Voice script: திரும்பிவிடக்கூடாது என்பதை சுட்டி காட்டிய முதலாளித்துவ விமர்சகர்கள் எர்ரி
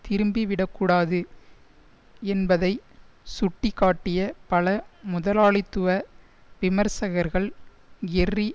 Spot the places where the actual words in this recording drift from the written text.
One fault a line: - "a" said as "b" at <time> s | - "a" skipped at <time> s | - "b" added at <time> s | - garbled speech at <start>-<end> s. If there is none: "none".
- "பல" added at 4.5 s